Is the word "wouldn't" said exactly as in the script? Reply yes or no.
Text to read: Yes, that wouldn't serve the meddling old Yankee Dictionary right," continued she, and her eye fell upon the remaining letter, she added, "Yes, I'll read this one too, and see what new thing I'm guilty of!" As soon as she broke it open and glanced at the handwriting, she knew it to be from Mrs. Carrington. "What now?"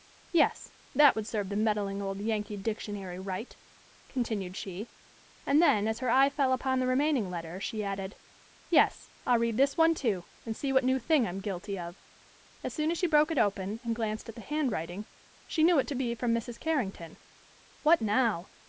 no